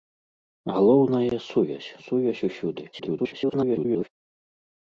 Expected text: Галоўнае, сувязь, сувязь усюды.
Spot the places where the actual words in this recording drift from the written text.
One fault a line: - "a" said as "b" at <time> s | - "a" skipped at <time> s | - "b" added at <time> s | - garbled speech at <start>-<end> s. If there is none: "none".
- garbled speech at 2.9-4.1 s